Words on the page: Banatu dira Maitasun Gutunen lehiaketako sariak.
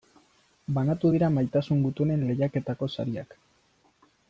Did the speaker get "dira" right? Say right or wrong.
right